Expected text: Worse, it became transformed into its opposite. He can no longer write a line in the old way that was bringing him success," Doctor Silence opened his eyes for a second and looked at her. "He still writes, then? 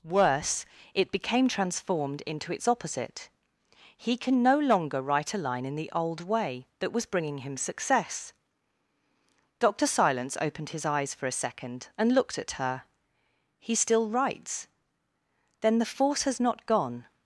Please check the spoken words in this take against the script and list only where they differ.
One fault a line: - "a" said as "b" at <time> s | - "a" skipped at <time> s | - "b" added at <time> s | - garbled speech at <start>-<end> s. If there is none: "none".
- "The force has not gone" added at 15.8 s